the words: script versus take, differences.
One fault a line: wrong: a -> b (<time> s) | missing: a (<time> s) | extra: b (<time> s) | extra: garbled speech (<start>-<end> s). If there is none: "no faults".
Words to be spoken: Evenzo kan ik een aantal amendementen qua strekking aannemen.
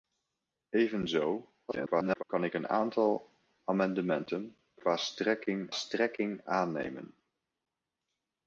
extra: garbled speech (1.7-2.2 s)
extra: strekking (5.7 s)